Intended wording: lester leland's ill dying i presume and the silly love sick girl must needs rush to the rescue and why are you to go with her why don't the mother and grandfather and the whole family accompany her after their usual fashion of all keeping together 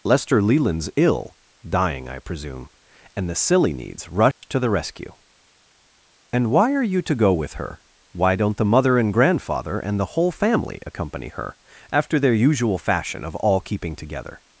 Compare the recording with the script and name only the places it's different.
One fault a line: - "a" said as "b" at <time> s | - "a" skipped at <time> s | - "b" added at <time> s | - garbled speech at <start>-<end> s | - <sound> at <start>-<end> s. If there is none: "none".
- "love sick girl must" skipped at 3.7 s
- dropout at 4.3-4.4 s